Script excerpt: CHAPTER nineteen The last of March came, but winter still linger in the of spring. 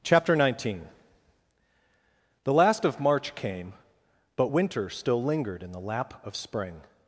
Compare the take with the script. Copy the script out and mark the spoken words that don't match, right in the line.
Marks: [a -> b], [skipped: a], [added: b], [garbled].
CHAPTER nineteen The last of March came, but winter still [linger -> lingered] in the [added: lap] of spring.